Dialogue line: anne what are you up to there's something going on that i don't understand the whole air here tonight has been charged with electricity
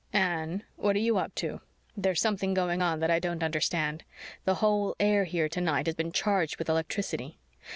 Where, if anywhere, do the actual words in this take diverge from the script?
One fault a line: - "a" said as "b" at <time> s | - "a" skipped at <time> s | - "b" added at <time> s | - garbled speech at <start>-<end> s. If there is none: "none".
none